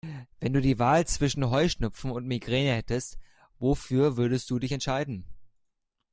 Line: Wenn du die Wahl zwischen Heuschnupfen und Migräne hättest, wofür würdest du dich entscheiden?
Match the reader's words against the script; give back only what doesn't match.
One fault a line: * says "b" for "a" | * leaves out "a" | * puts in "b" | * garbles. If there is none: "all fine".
all fine